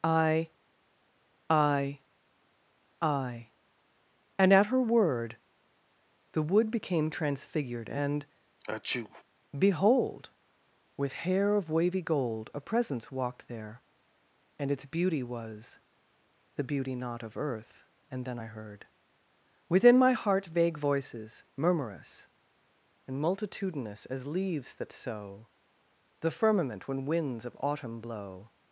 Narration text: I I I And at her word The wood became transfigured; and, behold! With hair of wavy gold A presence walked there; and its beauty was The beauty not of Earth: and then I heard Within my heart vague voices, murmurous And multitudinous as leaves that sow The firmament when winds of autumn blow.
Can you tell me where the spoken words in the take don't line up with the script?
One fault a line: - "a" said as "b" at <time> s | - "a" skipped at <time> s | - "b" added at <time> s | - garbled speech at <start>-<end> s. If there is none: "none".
none